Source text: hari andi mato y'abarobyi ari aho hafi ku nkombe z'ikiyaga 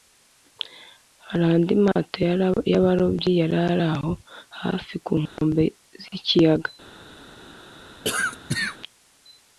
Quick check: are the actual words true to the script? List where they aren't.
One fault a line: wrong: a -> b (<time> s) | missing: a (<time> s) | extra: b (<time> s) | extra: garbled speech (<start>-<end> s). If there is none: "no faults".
extra: yari (3.4 s)